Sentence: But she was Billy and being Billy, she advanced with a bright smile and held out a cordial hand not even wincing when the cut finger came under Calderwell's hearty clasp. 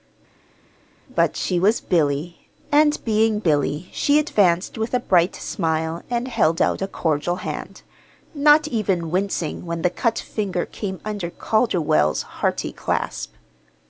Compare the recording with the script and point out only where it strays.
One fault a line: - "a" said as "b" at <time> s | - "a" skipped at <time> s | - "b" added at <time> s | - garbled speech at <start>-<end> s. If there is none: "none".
none